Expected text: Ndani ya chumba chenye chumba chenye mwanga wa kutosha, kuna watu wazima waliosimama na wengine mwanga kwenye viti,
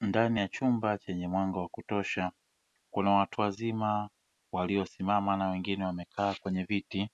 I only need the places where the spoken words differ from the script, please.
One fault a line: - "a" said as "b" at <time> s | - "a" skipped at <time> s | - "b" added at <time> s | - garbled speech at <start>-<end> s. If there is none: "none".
- "chumba chenye" skipped at 1.3 s
- "mwanga" said as "wamekaa" at 5.8 s